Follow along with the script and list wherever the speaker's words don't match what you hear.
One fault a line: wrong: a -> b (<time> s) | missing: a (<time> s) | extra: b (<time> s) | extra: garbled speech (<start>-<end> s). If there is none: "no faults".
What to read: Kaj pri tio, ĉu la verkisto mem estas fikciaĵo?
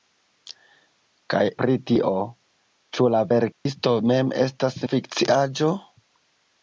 no faults